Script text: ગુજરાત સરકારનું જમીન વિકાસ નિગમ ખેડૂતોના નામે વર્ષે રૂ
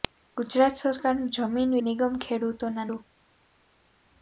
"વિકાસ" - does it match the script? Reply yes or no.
no